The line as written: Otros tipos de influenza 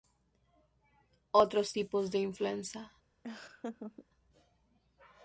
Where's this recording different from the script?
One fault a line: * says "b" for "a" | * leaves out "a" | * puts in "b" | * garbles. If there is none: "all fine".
all fine